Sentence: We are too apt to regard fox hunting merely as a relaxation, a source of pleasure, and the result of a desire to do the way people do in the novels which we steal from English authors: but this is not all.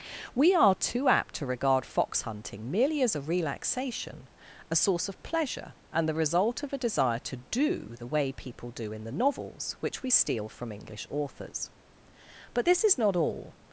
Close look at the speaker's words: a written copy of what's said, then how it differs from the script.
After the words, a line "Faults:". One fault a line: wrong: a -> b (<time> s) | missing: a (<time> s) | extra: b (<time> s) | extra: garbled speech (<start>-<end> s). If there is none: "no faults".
We are too apt to regard fox hunting merely as a relaxation, a source of pleasure, and the result of a desire to do the way people do in the novels which we steal from English authors: but this is not all.
Faults:
no faults